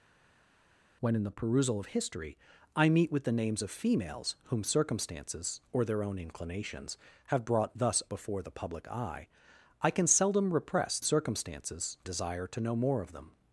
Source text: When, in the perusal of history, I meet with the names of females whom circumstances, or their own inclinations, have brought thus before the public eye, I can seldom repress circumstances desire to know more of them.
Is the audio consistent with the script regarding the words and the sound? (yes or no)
yes